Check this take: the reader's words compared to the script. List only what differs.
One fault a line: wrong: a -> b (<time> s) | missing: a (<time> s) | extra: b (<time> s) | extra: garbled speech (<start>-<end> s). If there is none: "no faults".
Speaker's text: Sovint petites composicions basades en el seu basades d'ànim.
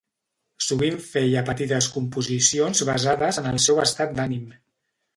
extra: feia (1.1 s)
wrong: basades -> estat (3.9 s)